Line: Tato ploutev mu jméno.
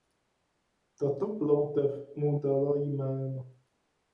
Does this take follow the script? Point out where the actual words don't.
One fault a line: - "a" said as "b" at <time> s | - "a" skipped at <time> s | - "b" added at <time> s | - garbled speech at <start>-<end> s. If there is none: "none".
- "dala" added at 2.4 s